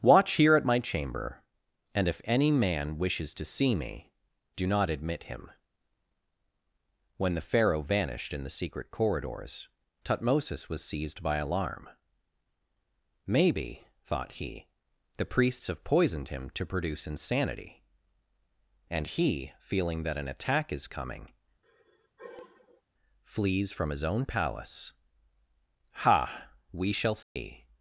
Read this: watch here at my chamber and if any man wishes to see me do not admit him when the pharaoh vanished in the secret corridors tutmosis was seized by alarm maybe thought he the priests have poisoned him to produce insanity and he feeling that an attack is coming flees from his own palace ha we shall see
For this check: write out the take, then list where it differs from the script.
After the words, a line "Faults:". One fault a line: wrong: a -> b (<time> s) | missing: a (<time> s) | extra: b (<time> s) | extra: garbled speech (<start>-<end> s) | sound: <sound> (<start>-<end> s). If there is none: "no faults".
watch here at my chamber and if any man wishes to see me do not admit him when the pharaoh vanished in the secret corridors tutmosis was seized by alarm maybe thought he the priests have poisoned him to produce insanity and he feeling that an attack is coming flees from his own palace ha we shall see
Faults:
sound: sigh (21.6-22.8 s)
sound: dropout (27.2-27.4 s)